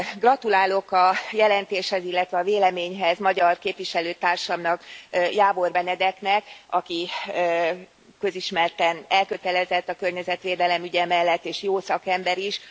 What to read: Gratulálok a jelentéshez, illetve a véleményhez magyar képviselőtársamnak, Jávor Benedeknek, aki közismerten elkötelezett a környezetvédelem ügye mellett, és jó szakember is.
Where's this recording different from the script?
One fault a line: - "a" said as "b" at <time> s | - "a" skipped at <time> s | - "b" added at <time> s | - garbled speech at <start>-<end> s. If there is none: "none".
none